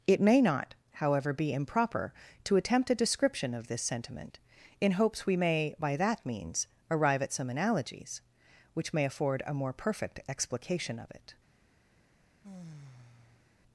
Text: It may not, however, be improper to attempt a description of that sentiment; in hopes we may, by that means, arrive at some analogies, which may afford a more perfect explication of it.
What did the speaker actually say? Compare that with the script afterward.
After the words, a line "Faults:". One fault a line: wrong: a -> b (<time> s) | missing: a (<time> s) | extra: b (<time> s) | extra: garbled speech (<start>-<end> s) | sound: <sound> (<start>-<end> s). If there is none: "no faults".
It may not, however, be improper to attempt a description of this sentiment; in hopes we may, by that means, arrive at some analogies, which may afford a more perfect explication of it.
Faults:
wrong: that -> this (3.7 s)
sound: sigh (12.4-13.5 s)